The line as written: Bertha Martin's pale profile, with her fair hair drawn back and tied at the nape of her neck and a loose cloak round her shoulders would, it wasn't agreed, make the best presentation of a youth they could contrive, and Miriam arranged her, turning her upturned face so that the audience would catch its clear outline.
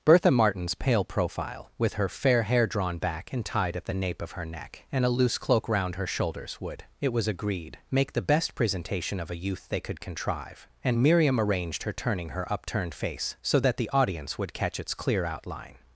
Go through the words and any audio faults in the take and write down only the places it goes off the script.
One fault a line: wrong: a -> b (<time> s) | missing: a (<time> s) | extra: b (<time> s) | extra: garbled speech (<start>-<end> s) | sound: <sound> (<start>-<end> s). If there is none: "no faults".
wrong: wasn't -> was (7.1 s)